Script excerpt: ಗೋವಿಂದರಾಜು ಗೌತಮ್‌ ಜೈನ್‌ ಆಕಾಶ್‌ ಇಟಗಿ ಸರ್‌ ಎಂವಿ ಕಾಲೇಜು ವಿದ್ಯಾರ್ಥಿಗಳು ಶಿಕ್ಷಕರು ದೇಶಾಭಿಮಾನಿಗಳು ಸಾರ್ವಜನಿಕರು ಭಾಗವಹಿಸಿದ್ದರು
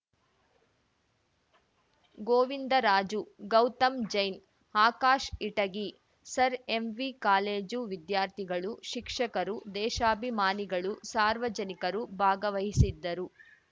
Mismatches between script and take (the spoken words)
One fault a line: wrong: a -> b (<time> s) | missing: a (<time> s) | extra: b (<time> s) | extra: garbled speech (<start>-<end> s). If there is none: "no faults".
no faults